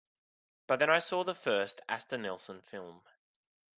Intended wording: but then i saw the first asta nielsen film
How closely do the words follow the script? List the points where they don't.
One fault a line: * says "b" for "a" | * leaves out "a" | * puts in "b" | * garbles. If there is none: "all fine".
all fine